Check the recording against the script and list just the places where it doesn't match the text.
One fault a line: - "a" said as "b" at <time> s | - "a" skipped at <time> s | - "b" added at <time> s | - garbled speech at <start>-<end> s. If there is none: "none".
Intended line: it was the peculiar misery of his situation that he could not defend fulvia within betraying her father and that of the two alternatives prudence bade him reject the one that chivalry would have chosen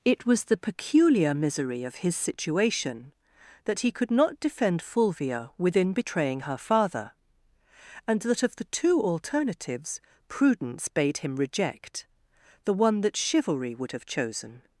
none